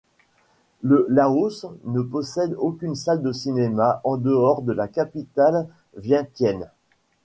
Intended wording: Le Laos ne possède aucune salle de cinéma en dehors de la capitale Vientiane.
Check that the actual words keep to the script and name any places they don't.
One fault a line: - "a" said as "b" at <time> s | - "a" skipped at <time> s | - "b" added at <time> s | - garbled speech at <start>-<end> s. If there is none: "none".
none